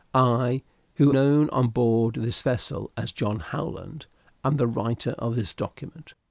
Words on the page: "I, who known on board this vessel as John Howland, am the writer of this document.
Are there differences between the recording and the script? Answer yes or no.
no